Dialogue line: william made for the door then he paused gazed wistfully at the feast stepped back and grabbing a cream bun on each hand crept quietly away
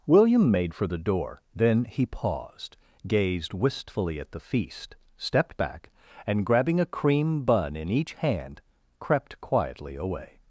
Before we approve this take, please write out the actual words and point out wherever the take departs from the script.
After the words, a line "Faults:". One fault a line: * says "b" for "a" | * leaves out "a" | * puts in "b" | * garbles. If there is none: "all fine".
william made for the door then he paused gazed wistfully at the feast stepped back and grabbing a cream bun in each hand crept quietly away
Faults:
* says "in" for "on"